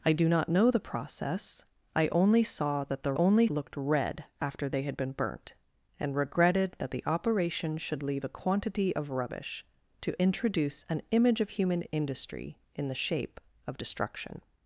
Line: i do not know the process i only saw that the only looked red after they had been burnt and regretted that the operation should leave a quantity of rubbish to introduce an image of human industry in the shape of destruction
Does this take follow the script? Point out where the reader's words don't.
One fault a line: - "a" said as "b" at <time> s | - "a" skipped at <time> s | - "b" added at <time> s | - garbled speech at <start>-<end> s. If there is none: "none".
none